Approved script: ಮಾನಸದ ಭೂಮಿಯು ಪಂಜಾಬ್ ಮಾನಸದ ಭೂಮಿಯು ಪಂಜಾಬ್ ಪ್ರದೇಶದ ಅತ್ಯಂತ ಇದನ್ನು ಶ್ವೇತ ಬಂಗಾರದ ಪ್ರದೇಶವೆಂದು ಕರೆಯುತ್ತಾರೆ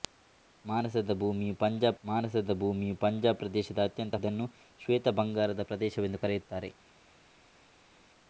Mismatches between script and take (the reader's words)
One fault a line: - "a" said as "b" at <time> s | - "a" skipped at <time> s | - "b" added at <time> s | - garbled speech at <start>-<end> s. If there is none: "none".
none